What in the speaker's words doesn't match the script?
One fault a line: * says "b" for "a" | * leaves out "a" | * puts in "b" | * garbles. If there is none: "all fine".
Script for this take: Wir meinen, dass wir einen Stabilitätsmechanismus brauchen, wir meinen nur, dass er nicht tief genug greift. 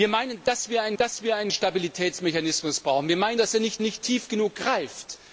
* puts in "dass wir einen"
* leaves out "nur"
* puts in "nicht"